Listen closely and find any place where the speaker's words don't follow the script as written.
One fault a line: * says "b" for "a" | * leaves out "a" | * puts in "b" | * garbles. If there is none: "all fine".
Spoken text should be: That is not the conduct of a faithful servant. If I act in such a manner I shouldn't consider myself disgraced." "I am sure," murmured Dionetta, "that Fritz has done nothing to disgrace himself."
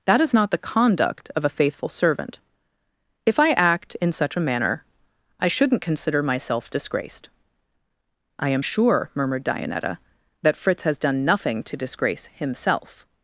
all fine